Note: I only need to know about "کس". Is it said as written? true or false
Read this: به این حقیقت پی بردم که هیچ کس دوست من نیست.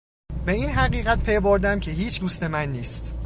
false